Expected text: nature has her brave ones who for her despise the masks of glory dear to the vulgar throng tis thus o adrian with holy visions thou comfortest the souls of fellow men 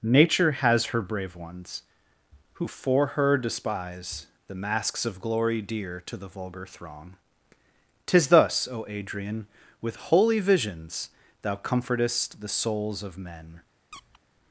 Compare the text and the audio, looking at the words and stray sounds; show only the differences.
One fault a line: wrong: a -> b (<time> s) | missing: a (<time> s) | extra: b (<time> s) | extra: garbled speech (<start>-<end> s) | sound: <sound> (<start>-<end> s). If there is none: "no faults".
missing: fellow (13.2 s)
sound: squeak (13.9-14.2 s)